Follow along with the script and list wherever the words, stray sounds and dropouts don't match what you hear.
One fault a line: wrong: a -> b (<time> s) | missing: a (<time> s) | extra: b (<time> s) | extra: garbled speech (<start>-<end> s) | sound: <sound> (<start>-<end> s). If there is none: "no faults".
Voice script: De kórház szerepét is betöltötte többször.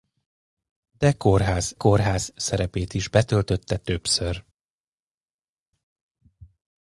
extra: kórház (1.7 s)